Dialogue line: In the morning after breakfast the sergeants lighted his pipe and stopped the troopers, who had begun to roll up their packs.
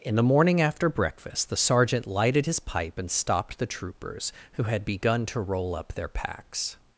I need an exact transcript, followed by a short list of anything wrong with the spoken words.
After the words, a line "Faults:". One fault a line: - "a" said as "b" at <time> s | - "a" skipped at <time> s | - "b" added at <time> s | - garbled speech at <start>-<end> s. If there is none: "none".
In the morning after breakfast the sergeant lighted his pipe and stopped the troopers, who had begun to roll up their packs.
Faults:
- "sergeants" said as "sergeant" at 1.6 s